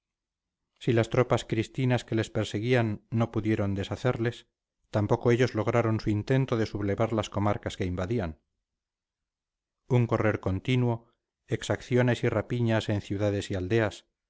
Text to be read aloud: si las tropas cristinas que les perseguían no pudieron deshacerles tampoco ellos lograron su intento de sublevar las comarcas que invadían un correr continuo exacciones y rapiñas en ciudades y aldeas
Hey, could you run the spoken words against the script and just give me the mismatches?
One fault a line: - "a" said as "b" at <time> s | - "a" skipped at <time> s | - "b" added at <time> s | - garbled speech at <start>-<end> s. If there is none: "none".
none